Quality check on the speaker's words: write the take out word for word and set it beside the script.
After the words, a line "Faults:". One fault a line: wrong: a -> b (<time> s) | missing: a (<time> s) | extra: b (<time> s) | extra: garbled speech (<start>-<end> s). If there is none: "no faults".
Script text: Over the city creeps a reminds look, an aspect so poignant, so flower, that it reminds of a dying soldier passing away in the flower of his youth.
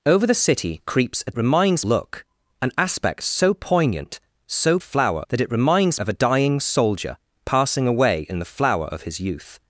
Over the city creeps a reminds look, an aspect so poignant, so flower, that it reminds of a dying soldier passing away in the flower of his youth.
Faults:
no faults